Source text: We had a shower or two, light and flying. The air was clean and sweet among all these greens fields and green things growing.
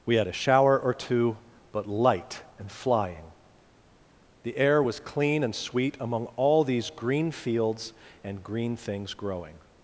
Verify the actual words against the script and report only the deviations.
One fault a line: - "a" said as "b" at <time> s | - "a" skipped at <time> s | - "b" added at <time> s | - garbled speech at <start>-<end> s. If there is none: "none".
- "but" added at 1.7 s
- "greens" said as "green" at 6.9 s